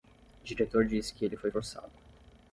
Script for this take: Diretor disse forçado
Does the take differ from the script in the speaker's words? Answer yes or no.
yes